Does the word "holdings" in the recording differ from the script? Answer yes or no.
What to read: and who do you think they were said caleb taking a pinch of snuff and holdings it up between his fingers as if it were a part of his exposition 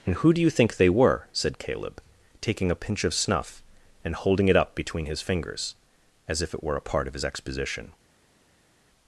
yes